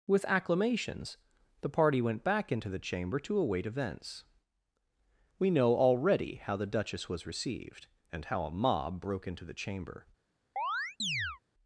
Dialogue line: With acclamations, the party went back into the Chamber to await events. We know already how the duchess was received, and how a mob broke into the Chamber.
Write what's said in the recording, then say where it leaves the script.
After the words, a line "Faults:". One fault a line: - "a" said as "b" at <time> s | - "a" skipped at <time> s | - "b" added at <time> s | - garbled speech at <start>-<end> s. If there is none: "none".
With acclamations, the party went back into the Chamber to await events. We know already how the duchess was received, and how a mob broke into the Chamber.
Faults:
none